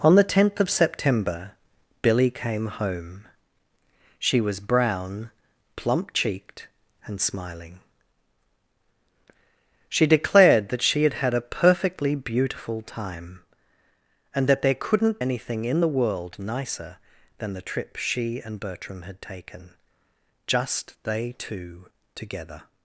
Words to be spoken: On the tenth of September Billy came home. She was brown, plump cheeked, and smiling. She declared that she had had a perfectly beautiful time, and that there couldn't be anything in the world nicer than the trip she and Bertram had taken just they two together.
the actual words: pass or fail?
fail